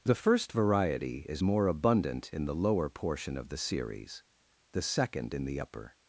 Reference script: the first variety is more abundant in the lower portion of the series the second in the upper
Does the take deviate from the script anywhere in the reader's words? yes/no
no